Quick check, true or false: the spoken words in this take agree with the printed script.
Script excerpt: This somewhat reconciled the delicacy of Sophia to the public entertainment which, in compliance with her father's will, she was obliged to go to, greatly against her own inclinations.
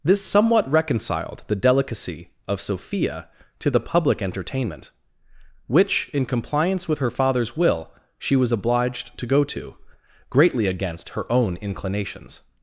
true